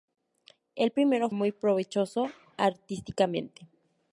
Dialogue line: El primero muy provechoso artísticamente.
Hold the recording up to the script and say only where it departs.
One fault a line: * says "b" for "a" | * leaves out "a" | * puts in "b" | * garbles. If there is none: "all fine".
all fine